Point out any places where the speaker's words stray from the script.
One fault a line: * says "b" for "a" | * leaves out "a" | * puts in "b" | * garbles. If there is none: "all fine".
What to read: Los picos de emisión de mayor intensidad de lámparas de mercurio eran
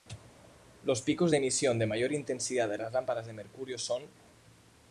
* puts in "las"
* says "son" for "eran"